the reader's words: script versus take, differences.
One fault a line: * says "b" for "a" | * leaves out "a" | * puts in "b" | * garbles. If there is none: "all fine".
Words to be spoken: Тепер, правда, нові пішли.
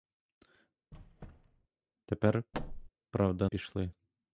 * leaves out "нові"